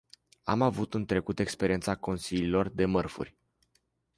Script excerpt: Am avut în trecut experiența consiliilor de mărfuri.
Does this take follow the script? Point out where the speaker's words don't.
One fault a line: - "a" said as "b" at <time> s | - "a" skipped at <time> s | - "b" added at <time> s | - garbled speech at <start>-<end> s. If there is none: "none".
none